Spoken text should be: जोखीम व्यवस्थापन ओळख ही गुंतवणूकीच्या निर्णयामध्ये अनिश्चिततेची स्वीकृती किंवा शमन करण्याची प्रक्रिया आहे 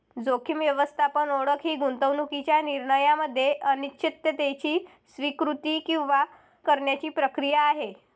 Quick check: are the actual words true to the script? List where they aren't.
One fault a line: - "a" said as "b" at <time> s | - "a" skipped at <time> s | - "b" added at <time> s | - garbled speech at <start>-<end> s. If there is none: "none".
- "शमन" skipped at 6.2 s